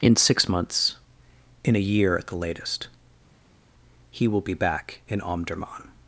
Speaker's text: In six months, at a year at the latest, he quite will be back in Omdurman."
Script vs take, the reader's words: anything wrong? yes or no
yes